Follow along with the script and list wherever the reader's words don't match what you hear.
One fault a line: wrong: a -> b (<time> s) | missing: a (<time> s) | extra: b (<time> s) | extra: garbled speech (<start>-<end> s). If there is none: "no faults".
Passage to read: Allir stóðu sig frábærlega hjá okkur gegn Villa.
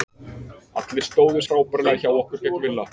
missing: sig (1.4 s)